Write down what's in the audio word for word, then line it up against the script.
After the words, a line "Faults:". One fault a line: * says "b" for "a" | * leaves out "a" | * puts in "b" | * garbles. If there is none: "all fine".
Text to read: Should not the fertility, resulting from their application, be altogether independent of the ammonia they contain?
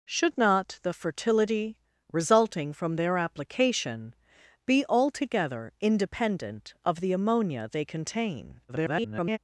Should not the fertility, resulting from their application, be altogether independent of the ammonia they contain? [garbled]
Faults:
* garbles